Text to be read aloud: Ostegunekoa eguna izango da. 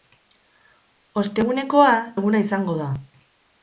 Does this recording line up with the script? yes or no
yes